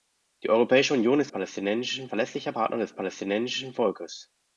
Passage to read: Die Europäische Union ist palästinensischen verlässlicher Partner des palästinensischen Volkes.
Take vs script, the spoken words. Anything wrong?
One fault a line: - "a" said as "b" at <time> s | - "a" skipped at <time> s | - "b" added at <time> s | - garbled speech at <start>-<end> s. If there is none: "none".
none